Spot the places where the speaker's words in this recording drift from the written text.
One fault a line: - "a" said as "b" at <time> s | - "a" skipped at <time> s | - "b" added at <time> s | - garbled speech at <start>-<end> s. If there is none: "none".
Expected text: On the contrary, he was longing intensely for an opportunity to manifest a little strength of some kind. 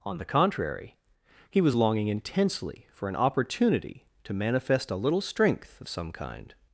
none